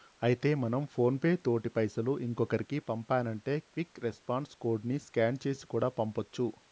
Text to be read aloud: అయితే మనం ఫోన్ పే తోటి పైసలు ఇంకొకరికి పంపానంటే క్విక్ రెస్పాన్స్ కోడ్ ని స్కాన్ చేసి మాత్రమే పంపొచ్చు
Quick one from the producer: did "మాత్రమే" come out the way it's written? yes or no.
no